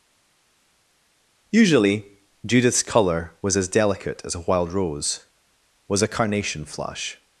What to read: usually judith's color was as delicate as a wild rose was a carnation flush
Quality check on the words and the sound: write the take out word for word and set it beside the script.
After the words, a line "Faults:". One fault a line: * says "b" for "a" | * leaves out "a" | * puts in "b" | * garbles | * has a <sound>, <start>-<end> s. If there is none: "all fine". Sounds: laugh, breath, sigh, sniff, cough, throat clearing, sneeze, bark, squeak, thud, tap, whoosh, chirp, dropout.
usually judith's color was as delicate as a wild rose was a carnation flush
Faults:
all fine